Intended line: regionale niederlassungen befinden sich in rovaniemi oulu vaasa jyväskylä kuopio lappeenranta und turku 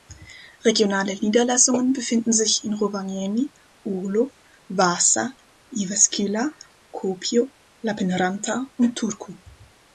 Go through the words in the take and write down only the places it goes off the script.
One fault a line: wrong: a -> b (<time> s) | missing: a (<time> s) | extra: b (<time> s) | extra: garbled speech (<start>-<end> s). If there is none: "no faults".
no faults